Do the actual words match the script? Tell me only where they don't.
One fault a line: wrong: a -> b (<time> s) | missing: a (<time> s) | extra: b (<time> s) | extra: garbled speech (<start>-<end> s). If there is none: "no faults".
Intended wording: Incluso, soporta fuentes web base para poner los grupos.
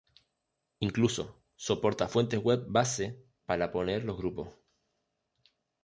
no faults